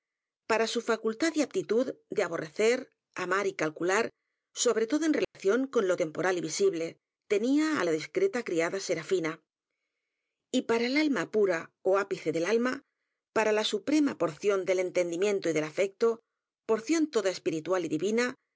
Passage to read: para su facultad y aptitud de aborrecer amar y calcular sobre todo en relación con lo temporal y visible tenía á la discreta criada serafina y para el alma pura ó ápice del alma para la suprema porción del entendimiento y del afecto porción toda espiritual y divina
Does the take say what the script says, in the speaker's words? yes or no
yes